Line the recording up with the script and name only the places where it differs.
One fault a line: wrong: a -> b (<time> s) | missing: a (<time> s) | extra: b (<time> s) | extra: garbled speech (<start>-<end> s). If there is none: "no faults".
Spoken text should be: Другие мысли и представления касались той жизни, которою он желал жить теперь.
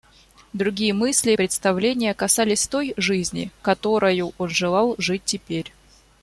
no faults